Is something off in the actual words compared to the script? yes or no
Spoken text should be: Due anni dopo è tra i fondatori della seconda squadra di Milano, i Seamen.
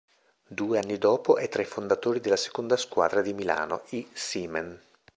no